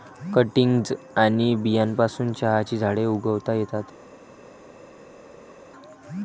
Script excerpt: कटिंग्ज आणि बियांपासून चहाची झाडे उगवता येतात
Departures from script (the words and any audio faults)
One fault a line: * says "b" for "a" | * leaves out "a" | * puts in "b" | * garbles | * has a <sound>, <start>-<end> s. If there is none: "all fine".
all fine